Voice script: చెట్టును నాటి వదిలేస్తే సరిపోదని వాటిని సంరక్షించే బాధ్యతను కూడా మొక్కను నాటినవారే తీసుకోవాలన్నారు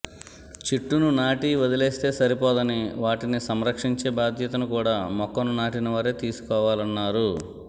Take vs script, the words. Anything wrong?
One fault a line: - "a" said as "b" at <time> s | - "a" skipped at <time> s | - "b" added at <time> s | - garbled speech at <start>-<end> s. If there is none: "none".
none